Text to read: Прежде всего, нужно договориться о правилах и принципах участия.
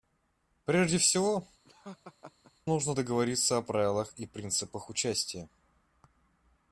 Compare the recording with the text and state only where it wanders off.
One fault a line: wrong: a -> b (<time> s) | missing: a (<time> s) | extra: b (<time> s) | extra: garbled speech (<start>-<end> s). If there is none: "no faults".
no faults